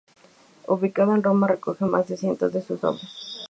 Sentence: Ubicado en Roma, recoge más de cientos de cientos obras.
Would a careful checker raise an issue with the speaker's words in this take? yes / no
yes